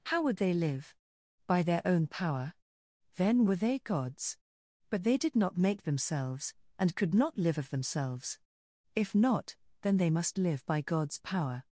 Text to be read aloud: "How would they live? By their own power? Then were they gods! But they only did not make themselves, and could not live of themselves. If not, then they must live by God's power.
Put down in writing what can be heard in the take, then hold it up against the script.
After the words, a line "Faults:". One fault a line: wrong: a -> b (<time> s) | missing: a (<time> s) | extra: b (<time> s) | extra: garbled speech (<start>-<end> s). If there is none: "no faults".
"How would they live? By their own power? Then were they gods! But they did not make themselves, and could not live of themselves. If not, then they must live by God's power.
Faults:
missing: only (5.2 s)